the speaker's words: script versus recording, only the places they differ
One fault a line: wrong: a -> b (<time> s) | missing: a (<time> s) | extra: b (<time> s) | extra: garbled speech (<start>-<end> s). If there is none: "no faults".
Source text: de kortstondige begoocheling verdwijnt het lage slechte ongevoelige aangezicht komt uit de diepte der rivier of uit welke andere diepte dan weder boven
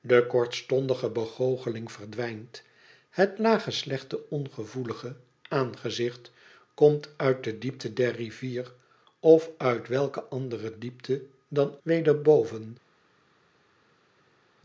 no faults